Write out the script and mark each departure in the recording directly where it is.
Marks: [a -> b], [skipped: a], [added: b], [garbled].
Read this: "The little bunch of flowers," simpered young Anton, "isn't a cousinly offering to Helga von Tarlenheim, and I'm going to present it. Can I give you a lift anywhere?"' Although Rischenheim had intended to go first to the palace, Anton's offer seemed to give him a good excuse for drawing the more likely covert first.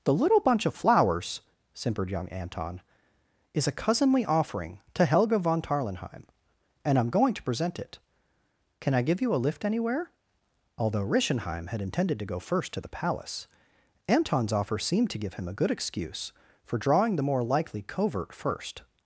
"The little bunch of flowers," simpered young Anton, ["isn't -> is] a cousinly offering to Helga von Tarlenheim, and I'm going to present it. Can I give you a lift anywhere?"' Although Rischenheim had intended to go first to the palace, Anton's offer seemed to give him a good excuse for drawing the more likely covert first.